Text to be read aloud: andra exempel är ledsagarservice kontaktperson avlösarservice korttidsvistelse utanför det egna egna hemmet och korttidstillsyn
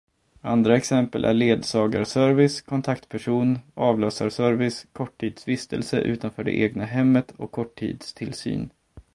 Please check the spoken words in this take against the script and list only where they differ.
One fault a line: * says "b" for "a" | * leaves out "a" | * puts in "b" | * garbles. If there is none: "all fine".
* leaves out "egna"